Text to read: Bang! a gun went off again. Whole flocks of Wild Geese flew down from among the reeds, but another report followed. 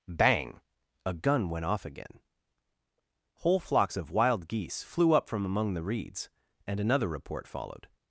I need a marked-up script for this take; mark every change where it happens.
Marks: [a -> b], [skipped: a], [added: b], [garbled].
Bang! a gun went off again. Whole flocks of Wild Geese flew [down -> up] from among the reeds, [but -> and] another report followed.